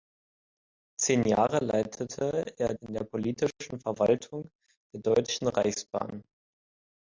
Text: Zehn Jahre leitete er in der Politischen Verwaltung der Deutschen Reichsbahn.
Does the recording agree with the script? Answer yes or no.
yes